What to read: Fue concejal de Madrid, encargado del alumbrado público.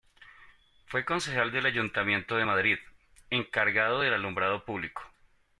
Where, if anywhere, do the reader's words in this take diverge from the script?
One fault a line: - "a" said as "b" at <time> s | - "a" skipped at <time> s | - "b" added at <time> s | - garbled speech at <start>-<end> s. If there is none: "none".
- "del Ayuntamiento" added at 1.5 s